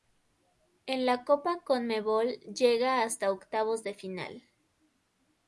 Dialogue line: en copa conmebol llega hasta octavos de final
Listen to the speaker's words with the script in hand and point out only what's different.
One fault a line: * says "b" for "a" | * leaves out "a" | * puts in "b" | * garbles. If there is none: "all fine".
* puts in "la"